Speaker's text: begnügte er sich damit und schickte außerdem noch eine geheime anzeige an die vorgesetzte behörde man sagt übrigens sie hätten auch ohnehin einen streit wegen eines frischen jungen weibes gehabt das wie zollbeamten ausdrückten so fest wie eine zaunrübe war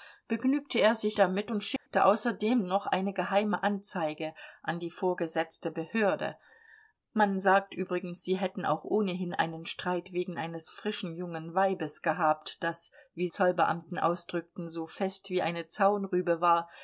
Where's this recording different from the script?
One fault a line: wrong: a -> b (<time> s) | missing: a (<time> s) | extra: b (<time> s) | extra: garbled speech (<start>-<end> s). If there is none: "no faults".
no faults